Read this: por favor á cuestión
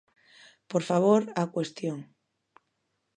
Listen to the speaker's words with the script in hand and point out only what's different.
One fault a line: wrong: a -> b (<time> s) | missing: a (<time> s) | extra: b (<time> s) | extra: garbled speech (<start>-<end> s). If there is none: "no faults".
no faults